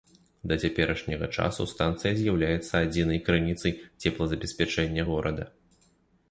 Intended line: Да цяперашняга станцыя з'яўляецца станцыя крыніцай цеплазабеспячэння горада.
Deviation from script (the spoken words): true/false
true